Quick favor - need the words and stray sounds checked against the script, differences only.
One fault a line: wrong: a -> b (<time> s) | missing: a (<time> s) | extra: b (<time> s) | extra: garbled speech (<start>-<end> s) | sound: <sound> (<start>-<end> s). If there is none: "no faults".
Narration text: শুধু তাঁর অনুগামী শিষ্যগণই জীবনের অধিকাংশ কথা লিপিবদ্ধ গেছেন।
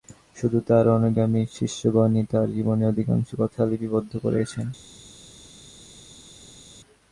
extra: তাঁর (2.3 s)
extra: করে (4.2 s)